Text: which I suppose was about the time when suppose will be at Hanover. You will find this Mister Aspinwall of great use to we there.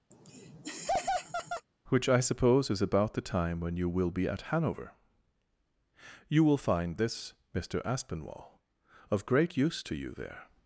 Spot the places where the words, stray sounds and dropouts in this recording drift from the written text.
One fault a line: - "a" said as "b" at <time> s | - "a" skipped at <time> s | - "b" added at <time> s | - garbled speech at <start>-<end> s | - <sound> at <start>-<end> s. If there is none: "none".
- laugh at 0.1-1.7 s
- "was" said as "is" at 2.7 s
- "suppose" said as "you" at 3.8 s
- "we" said as "you" at 9.9 s